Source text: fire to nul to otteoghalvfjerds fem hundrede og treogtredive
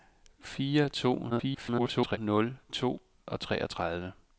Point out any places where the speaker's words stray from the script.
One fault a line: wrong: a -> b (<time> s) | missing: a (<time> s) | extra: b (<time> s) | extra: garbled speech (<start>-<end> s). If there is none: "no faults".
extra: garbled speech (1.3-2.2 s)
missing: otteoghalvfjerds fem hundrede (3.0 s)